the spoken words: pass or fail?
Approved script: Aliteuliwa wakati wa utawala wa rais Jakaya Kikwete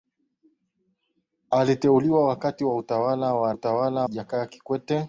fail